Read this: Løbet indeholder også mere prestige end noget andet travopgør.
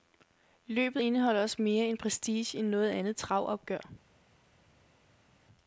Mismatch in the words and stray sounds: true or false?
false